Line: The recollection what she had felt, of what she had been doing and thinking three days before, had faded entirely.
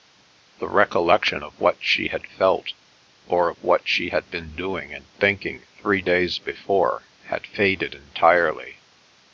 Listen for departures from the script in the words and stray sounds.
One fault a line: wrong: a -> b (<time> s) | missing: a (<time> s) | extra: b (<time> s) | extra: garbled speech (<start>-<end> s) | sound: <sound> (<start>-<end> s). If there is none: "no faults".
extra: of (1.4 s)
extra: or (3.3 s)